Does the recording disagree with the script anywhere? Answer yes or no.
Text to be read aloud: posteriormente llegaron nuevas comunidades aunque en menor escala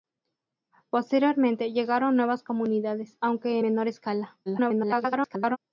yes